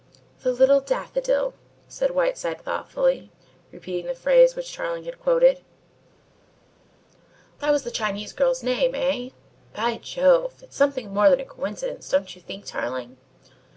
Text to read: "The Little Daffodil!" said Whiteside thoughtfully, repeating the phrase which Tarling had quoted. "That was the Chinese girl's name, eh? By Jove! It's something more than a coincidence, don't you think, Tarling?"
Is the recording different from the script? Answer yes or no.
no